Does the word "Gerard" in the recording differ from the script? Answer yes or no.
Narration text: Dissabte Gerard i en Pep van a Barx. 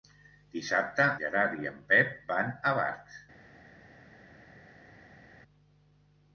no